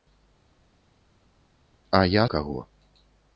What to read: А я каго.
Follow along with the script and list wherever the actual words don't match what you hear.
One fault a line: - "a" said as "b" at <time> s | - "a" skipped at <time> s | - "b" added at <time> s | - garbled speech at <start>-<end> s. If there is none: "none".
none